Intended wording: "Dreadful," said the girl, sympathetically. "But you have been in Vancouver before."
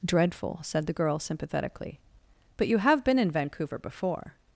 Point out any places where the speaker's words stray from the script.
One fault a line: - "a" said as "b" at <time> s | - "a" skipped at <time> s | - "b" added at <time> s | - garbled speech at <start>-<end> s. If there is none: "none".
none